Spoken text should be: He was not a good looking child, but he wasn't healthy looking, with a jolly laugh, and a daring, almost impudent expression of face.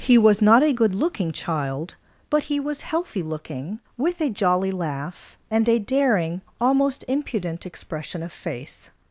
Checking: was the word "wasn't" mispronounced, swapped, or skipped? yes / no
yes